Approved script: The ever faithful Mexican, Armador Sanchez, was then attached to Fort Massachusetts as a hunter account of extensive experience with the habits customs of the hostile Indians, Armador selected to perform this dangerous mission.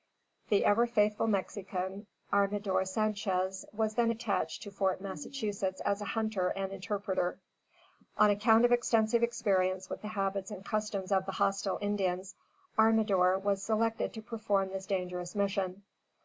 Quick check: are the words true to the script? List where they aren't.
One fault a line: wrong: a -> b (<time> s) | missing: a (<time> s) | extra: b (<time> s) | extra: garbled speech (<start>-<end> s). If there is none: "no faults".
extra: and interpreter On (6.5 s)
extra: and (10.5 s)
extra: was (13.4 s)